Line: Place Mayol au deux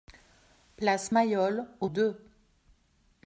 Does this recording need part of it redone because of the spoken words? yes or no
no